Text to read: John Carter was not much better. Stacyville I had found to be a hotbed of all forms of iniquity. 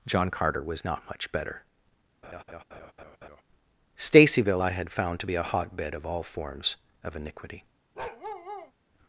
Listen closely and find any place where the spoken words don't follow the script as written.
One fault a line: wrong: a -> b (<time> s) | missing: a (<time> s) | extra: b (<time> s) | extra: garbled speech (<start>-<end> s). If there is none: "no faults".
no faults